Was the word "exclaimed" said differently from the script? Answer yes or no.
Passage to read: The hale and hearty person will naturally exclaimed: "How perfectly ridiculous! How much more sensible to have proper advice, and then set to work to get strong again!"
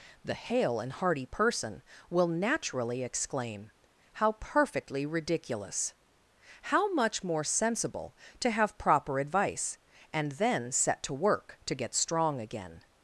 yes